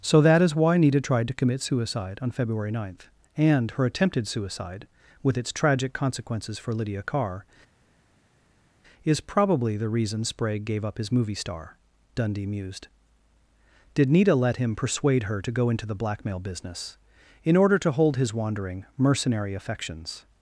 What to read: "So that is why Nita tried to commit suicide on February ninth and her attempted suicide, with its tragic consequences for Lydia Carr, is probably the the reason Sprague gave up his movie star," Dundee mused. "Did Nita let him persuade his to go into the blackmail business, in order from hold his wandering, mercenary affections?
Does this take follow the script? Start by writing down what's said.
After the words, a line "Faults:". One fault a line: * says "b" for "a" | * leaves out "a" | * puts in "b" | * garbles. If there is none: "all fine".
"So that is why Nita tried to commit suicide on February ninth and her attempted suicide, with its tragic consequences for Lydia Carr, is probably the reason Sprague gave up his movie star," Dundee mused. "Did Nita let him persuade her to go into the blackmail business, in order to hold his wandering, mercenary affections?
Faults:
* leaves out "the"
* says "her" for "his"
* says "to" for "from"